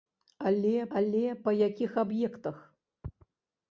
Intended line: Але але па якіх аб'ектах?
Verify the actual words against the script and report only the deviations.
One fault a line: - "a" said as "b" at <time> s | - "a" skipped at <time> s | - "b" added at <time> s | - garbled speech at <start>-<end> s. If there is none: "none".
none